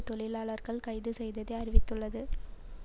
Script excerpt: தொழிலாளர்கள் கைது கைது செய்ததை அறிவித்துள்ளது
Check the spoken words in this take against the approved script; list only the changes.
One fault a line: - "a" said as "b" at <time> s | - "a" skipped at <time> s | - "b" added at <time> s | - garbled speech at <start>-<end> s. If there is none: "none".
- "கைது" skipped at 1.1 s